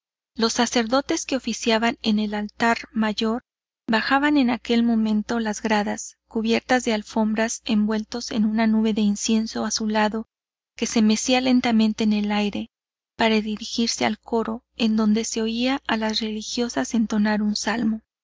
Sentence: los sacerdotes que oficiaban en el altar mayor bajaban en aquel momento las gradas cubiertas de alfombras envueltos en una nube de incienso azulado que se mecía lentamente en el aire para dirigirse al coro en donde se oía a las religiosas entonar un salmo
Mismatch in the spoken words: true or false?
false